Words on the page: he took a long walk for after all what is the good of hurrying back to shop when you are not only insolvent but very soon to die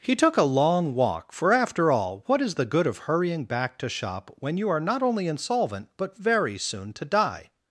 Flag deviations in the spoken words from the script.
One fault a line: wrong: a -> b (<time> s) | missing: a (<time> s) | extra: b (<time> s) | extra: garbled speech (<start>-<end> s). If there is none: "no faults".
no faults